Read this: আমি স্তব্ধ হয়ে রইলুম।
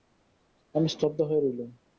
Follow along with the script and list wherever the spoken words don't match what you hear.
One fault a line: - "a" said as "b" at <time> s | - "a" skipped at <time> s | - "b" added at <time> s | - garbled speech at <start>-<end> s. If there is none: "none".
none